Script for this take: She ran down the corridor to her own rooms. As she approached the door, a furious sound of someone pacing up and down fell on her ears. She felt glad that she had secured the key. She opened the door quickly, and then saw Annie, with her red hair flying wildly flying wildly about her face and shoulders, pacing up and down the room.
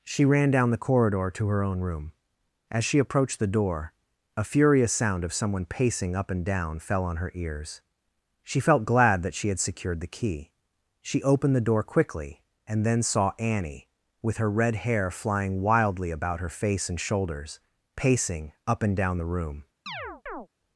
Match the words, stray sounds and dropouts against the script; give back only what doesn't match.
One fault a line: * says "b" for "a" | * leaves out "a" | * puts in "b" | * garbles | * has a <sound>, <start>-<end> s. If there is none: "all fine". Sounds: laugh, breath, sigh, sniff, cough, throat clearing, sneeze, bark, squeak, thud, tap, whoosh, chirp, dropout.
* says "room" for "rooms"
* leaves out "flying wildly"
* has a chirp, 19.9-20.5 s